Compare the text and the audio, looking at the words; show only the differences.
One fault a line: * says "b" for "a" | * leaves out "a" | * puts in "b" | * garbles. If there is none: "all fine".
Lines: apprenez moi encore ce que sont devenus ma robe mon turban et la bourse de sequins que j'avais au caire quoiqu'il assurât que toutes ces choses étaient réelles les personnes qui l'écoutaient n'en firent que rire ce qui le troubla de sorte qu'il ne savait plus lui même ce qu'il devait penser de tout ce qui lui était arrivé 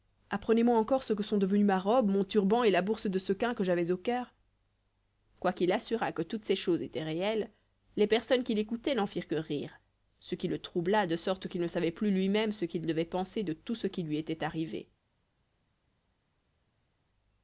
all fine